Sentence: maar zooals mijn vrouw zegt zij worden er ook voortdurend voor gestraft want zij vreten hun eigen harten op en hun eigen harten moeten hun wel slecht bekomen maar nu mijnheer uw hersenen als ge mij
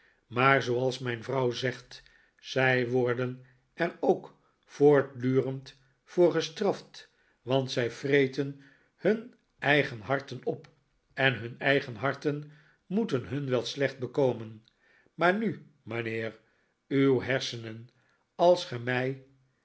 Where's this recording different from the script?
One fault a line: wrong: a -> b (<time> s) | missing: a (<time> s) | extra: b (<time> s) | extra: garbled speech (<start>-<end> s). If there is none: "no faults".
no faults